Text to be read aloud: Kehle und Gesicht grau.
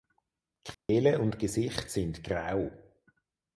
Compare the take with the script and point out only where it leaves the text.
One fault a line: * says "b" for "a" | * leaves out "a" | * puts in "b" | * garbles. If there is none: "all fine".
* puts in "sind"